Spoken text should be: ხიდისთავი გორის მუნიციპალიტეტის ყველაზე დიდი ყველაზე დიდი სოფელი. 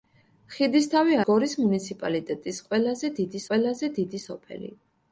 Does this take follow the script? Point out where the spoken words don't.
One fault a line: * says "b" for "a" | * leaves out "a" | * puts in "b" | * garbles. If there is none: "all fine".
all fine